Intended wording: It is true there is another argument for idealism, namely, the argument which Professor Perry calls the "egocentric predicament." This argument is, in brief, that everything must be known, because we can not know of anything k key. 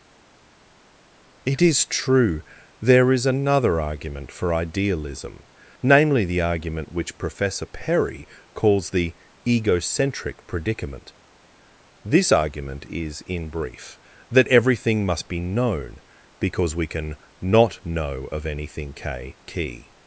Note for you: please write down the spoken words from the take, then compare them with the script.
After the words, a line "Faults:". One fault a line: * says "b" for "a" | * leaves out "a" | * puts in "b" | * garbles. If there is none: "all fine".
It is true there is another argument for idealism, namely, the argument which Professor Perry calls the "egocentric predicament." This argument is, in brief, that everything must be known, because we can not know of anything k key.
Faults:
all fine